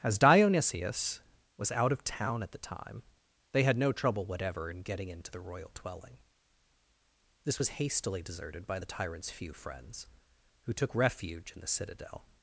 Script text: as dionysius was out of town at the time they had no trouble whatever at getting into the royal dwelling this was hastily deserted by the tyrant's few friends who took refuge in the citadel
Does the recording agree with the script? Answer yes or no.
no